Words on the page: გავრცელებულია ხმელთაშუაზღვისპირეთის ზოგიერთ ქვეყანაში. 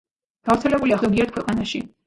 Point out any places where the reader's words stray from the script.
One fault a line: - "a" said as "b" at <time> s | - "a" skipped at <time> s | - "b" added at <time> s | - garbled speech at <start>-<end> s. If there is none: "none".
- "ხმელთაშუაზღვისპირეთის" skipped at 1.0 s